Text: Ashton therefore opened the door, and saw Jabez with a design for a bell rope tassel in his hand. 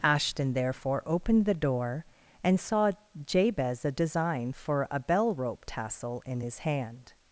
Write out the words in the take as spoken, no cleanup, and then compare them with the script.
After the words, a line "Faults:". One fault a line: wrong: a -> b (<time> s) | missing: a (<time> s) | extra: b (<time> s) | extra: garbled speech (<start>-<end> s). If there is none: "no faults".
Ashton therefore opened the door, and saw Jabez a design for a bell rope tassel in his hand.
Faults:
missing: with (3.9 s)